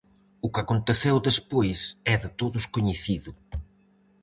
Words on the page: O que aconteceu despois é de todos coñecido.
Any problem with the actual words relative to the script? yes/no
no